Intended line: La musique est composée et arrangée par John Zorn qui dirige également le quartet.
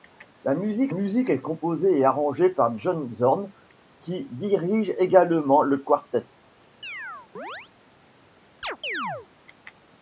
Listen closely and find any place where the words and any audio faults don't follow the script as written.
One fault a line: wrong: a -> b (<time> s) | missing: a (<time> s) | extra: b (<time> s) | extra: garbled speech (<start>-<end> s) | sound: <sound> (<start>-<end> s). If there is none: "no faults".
extra: musique (0.9 s)
sound: chirp (6.8-7.7 s)
sound: chirp (8.6-9.3 s)